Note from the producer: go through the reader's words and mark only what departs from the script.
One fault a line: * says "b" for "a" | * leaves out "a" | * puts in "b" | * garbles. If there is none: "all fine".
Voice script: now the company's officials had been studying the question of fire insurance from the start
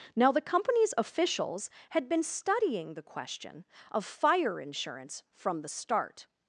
all fine